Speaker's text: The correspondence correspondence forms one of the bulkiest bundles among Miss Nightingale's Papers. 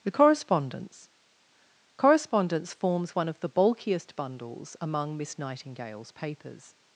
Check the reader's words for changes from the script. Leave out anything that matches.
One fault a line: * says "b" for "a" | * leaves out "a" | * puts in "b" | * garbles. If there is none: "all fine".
all fine